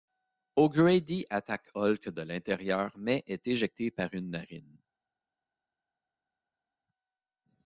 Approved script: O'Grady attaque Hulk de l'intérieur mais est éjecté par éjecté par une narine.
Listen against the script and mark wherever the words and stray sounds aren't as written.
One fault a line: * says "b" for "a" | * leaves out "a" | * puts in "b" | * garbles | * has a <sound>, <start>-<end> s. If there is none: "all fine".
* leaves out "éjecté par"